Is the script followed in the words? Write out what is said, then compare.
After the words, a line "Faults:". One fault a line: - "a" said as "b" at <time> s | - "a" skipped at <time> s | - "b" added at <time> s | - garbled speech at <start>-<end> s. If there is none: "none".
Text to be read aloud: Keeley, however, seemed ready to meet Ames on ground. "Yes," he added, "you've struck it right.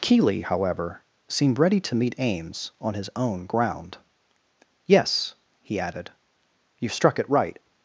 Keeley, however, seemed ready to meet Ames on his own ground. "Yes," he added, "you've struck it right.
Faults:
- "his own" added at 2.9 s